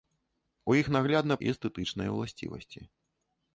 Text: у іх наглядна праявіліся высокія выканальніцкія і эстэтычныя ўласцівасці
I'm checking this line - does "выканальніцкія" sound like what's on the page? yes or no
no